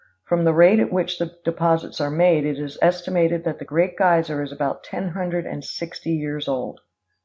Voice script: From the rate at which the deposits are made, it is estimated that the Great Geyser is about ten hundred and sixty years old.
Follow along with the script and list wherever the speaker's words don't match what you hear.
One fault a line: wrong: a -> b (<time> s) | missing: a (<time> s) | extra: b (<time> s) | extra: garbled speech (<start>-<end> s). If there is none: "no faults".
no faults